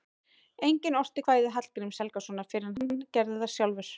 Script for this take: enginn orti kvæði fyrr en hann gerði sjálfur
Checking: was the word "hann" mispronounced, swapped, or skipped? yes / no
no